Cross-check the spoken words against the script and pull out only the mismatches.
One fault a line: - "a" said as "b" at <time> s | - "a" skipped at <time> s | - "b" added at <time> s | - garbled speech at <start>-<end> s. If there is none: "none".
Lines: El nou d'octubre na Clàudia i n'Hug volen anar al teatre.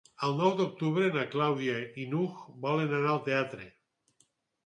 none